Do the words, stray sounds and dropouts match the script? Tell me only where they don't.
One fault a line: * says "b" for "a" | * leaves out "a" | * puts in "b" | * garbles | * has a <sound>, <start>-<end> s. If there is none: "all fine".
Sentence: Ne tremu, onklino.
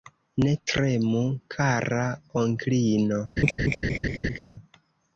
* puts in "kara"
* has a laugh, 3.4-4.4 s